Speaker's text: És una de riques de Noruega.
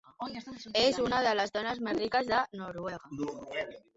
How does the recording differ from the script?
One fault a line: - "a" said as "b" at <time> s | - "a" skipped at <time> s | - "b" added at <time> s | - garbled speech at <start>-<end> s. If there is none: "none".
- "les dones més" added at 1.4 s